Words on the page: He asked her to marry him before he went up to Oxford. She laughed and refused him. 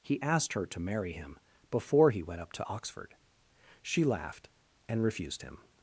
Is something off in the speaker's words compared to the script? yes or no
no